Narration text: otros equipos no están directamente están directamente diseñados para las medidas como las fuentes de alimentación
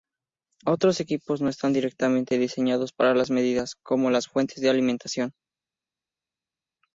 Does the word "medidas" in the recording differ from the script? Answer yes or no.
no